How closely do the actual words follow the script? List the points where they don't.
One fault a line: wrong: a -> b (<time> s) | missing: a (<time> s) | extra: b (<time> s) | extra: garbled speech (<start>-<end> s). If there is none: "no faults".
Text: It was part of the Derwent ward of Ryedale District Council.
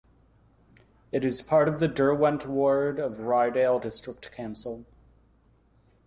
wrong: was -> is (1.2 s)